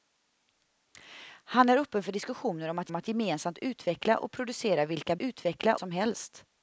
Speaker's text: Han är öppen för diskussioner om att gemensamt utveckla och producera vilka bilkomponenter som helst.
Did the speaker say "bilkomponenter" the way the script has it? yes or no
no